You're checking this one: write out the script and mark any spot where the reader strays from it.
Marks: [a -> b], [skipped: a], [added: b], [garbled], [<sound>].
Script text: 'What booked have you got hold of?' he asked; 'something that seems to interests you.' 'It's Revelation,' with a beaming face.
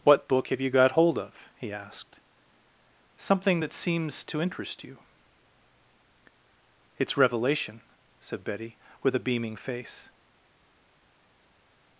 'What [booked -> book] have you got hold of?' he asked; 'something that seems to [interests -> interest] you.' 'It's Revelation,' [added: said Betty] with a beaming face.